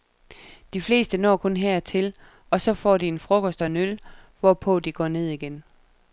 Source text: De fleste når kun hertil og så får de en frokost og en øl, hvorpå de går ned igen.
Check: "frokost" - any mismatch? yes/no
no